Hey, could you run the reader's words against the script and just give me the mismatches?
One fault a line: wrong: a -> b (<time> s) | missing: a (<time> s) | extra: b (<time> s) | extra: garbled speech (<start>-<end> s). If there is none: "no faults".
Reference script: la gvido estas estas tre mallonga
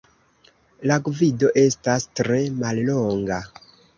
missing: estas (2.1 s)